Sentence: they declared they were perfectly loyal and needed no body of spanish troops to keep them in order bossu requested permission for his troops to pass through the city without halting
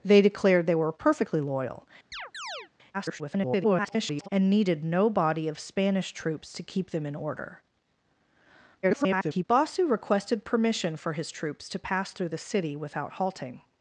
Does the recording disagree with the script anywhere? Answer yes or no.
yes